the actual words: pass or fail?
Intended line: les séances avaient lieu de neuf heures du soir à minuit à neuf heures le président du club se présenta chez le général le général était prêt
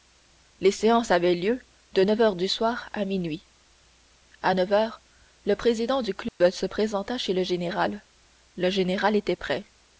pass